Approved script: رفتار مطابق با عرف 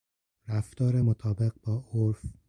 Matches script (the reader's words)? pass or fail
pass